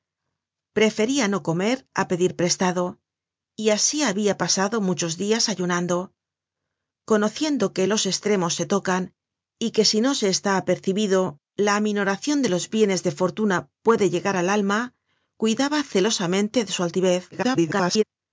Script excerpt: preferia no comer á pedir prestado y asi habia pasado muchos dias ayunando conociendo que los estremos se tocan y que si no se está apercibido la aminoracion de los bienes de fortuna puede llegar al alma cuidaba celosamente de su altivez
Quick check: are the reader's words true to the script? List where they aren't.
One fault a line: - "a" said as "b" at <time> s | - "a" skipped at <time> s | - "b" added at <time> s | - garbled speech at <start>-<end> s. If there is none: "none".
- garbled speech at 17.3-18.0 s